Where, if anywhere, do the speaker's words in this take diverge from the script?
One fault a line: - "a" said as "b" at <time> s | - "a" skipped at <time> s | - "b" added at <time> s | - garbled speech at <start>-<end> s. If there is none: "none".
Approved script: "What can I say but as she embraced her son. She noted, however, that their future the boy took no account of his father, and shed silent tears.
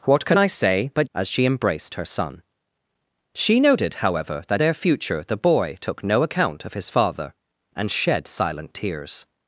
none